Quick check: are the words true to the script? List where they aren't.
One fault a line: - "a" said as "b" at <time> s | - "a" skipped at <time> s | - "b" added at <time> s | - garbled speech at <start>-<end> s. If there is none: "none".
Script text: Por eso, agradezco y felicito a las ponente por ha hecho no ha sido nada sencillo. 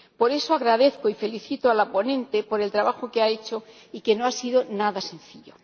- "las" said as "la" at 1.7 s
- "el trabajo que" added at 2.6 s
- "y que" added at 3.9 s